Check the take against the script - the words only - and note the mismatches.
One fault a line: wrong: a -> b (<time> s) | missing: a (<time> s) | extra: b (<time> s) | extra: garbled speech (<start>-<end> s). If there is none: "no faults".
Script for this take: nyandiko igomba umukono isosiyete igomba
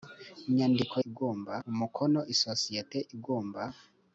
no faults